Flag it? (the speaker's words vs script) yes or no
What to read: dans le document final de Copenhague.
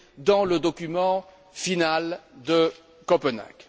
no